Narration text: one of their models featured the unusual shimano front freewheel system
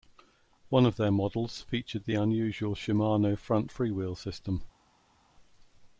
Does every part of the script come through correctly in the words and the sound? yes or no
yes